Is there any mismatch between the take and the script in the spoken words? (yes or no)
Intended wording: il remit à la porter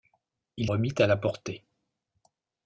no